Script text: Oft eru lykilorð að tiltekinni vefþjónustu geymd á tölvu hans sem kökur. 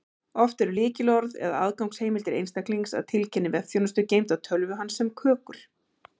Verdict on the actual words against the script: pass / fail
fail